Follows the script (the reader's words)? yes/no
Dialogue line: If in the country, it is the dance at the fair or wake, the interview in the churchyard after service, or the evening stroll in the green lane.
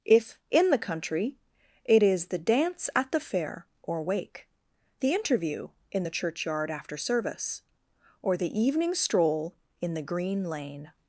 yes